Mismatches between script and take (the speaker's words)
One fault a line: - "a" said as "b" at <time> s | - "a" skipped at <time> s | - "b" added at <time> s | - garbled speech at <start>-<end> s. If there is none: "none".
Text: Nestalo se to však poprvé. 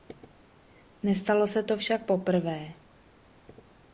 none